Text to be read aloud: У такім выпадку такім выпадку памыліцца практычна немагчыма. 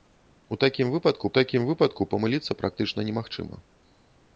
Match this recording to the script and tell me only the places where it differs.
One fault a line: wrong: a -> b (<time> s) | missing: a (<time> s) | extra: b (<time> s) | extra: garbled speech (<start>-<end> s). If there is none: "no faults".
no faults